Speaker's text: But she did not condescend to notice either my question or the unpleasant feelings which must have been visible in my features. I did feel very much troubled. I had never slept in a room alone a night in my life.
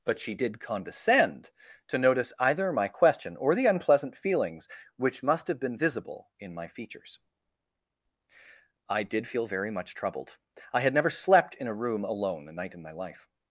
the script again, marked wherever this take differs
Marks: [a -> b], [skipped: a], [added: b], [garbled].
But she did [skipped: not] condescend to notice either my question or the unpleasant feelings which must have been visible in my features. I did feel very much troubled. I had never slept in a room alone a night in my life.